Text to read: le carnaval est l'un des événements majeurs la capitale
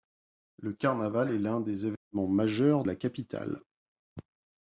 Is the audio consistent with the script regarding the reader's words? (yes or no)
yes